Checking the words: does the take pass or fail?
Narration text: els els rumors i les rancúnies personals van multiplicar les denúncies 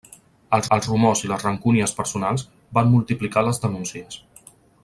pass